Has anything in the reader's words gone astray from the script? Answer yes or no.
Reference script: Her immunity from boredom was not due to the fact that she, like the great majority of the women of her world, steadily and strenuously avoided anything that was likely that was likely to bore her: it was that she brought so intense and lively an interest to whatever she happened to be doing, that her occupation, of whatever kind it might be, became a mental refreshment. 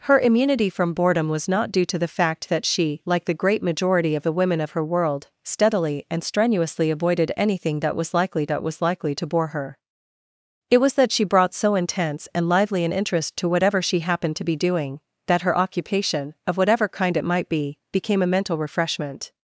no